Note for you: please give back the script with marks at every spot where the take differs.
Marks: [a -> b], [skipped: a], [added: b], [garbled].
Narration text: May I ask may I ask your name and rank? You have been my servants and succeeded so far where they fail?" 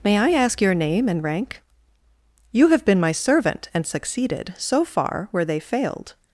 May I ask [skipped: may I ask] your name and rank? You have been my [servants -> servant] and succeeded so far where they [fail?" -> failed]